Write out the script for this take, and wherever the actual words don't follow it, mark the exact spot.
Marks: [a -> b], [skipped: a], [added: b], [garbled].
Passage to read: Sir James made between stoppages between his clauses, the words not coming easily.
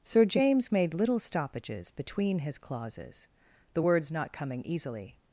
Sir James made [between -> little] stoppages between his clauses, the words not coming easily.